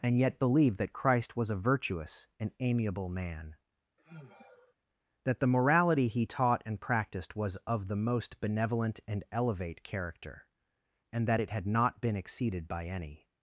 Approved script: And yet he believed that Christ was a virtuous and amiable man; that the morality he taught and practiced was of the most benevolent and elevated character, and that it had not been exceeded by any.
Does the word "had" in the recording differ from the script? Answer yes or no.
no